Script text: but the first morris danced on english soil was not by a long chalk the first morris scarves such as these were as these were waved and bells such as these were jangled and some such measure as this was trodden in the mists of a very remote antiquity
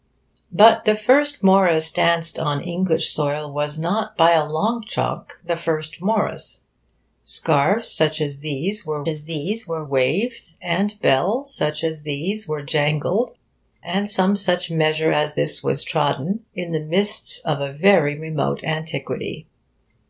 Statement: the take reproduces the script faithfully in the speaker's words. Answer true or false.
true